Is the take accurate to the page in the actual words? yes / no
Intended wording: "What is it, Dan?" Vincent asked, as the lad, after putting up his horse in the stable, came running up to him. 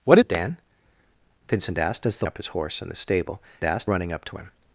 no